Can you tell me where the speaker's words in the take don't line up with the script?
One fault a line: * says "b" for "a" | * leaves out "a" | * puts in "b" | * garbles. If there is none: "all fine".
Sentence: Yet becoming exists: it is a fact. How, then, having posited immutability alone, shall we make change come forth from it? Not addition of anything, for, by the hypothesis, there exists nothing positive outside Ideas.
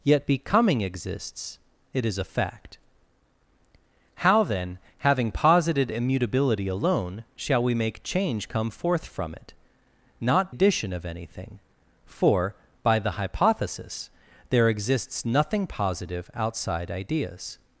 all fine